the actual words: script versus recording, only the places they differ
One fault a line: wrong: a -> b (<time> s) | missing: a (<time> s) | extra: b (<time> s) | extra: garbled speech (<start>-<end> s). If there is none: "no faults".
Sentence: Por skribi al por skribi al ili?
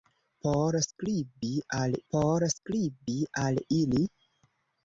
no faults